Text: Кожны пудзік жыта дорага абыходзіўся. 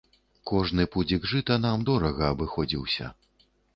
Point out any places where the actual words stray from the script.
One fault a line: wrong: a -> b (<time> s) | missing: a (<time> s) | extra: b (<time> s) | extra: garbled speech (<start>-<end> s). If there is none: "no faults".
extra: нам (1.6 s)